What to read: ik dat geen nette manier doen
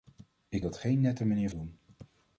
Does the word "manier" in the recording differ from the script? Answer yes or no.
no